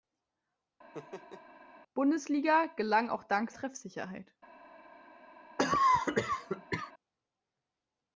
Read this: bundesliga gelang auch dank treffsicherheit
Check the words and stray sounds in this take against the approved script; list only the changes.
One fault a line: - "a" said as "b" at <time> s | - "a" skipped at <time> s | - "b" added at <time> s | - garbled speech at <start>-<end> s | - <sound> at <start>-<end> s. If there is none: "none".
- laugh at 0.9-1.5 s
- cough at 5.6-6.9 s